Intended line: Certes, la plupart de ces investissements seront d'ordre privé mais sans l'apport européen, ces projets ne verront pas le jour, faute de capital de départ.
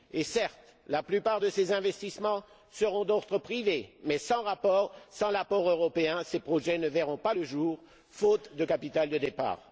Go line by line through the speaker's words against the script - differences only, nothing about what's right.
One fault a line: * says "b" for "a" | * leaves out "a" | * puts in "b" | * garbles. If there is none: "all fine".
all fine